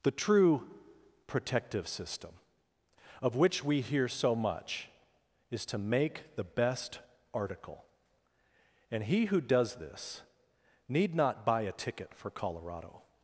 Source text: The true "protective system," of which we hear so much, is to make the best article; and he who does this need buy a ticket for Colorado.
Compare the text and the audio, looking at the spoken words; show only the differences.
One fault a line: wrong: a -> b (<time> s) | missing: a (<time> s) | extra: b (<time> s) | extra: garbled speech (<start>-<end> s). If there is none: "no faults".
extra: not (11.2 s)